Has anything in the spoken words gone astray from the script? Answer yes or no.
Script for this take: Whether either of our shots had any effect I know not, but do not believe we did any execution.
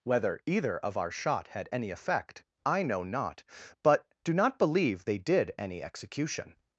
yes